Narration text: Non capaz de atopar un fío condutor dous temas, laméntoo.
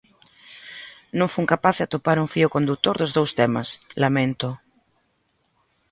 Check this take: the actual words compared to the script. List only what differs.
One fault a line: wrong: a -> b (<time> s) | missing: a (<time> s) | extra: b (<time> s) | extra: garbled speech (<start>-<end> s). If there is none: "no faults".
extra: fun (1.3 s)
extra: dos (3.0 s)